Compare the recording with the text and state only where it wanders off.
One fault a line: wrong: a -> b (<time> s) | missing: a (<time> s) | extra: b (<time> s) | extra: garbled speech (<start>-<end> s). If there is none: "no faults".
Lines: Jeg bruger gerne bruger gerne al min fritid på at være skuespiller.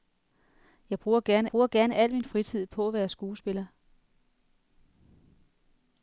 no faults